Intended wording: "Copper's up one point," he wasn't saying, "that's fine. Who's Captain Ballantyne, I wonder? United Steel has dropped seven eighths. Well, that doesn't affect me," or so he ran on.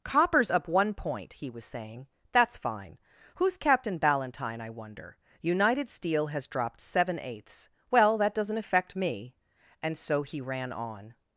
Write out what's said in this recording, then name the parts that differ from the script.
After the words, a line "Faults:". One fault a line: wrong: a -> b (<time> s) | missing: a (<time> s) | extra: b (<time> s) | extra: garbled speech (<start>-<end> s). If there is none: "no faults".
"Copper's up one point," he was saying, "that's fine. Who's Captain Ballantyne, I wonder? United Steel has dropped seven eighths. Well, that doesn't affect me," and so he ran on.
Faults:
wrong: wasn't -> was (1.5 s)
wrong: or -> and (9.8 s)